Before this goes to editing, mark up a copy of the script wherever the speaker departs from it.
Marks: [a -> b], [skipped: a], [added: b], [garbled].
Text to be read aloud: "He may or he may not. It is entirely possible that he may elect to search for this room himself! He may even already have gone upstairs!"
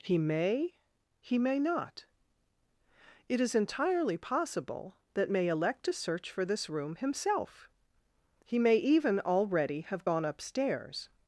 "He may [skipped: or] he may not. It is entirely possible that [skipped: he] may elect to search for this room himself! He may even already have gone upstairs!"